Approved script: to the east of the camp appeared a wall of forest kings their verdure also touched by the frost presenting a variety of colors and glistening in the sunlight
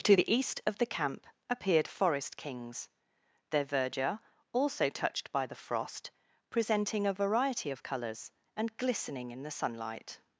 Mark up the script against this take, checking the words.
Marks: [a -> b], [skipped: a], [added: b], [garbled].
to the east of the camp appeared [skipped: a wall of] forest kings their verdure also touched by the frost presenting a variety of colors and glistening in the sunlight